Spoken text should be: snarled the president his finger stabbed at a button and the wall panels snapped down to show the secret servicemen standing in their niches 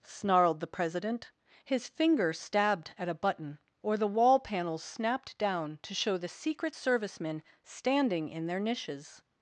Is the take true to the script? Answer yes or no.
no